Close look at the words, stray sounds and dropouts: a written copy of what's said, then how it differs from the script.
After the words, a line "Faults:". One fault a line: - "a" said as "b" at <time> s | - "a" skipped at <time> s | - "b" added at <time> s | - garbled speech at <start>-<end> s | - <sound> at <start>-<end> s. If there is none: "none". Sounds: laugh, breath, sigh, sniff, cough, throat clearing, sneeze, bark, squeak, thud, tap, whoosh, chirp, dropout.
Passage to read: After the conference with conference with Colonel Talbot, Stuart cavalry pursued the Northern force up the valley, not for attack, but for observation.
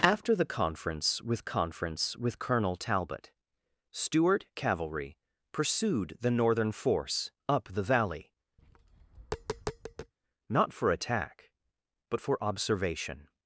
After the conference with conference with Colonel Talbot, Stuart cavalry pursued the Northern force up the valley, not for attack, but for observation.
Faults:
- tap at 8.6-10.1 s